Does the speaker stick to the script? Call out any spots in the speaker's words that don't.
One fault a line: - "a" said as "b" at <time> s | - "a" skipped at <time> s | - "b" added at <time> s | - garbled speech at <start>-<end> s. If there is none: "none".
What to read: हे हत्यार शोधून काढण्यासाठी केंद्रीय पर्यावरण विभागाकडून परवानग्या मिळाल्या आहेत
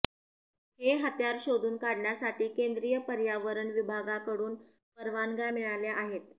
none